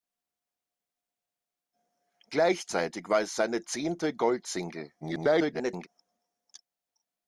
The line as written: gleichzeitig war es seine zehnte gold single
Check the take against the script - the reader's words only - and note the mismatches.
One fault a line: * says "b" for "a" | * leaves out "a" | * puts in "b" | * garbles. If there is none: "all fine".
* garbles